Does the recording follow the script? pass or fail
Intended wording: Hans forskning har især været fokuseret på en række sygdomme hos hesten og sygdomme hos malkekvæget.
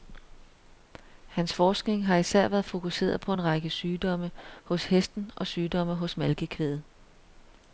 pass